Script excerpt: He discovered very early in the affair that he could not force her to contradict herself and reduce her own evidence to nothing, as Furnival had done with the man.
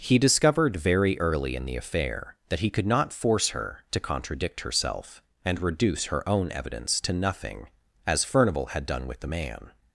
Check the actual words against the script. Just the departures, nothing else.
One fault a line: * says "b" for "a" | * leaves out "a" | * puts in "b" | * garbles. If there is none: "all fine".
all fine